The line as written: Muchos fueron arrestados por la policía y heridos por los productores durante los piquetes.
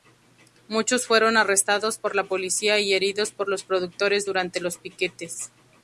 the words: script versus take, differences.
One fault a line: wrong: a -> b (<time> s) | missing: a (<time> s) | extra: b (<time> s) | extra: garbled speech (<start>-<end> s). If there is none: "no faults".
no faults